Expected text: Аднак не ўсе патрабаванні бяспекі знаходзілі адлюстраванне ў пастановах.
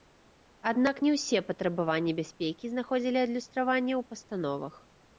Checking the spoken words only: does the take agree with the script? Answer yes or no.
yes